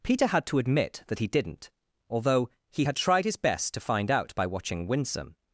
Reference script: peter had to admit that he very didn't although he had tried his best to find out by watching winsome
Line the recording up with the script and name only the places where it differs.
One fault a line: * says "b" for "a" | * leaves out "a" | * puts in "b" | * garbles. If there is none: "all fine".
* leaves out "very"